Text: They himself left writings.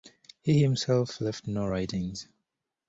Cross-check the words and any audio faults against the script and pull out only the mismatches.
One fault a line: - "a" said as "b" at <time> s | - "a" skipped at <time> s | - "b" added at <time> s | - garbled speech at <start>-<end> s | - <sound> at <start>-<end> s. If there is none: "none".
- "They" said as "He" at 0.4 s
- "no" added at 1.4 s